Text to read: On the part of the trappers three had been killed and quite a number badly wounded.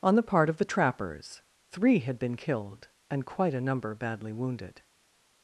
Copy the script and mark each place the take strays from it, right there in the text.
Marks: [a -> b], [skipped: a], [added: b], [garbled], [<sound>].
On the part of the trappers three had been killed and quite a number badly wounded.